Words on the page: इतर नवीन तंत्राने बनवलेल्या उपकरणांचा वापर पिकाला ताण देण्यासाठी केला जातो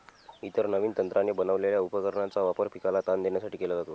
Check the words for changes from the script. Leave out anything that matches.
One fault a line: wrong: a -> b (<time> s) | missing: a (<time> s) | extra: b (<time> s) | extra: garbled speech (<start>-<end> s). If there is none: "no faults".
no faults